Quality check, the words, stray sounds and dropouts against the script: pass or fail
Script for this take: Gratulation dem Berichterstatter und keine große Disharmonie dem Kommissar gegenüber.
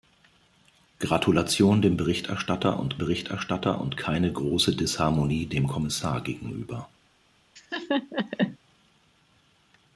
fail